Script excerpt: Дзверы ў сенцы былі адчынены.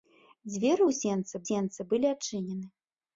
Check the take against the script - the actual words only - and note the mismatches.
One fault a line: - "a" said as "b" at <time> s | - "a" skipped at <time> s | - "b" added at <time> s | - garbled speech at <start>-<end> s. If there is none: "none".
- "сенцы" added at 1.5 s